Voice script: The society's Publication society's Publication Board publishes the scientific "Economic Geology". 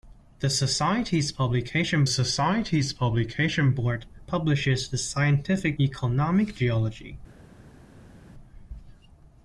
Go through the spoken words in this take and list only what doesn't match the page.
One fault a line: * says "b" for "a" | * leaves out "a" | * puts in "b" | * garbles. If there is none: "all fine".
all fine